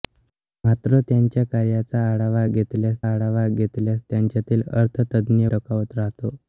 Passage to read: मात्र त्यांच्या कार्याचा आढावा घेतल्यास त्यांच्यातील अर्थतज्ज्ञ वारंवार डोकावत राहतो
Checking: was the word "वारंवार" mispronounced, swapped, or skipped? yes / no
yes